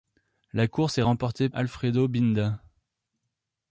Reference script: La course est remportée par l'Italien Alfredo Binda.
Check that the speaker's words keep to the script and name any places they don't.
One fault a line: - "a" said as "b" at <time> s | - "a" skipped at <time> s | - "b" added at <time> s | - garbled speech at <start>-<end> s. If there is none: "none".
- "par l'Italien" skipped at 1.5 s